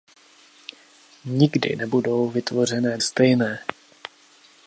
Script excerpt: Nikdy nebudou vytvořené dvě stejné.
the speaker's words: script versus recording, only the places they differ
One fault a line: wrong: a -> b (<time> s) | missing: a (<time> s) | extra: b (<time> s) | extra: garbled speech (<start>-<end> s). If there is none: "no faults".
missing: dvě (3.0 s)